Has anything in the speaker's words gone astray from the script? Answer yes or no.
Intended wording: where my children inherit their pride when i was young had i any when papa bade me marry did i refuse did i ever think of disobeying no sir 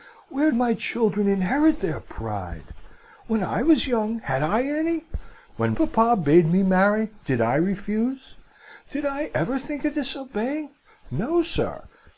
no